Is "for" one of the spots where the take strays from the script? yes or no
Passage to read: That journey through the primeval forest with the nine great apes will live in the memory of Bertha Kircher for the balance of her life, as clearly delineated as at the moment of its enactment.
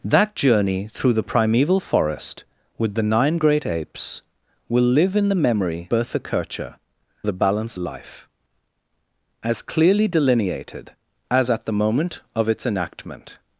yes